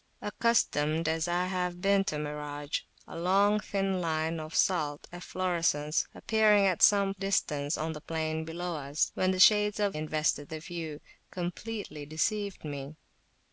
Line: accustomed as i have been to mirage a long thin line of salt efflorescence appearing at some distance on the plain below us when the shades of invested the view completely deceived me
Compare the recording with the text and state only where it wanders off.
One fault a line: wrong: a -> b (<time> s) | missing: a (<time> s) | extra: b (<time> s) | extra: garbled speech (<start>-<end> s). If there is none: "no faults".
no faults